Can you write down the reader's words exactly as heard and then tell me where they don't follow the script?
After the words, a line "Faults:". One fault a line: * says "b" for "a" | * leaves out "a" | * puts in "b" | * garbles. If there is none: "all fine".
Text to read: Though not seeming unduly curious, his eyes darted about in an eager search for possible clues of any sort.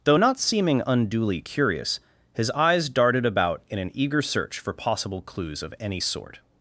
Though not seeming unduly curious, his eyes darted about in an eager search for possible clues of any sort.
Faults:
all fine